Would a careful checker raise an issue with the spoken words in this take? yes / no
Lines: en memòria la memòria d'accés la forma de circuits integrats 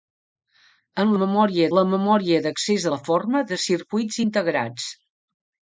no